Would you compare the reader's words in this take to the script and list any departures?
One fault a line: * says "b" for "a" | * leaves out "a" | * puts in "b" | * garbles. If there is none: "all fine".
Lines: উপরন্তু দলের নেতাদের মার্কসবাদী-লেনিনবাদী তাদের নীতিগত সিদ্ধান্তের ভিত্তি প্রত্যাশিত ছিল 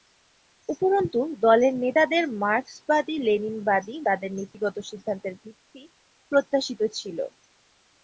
all fine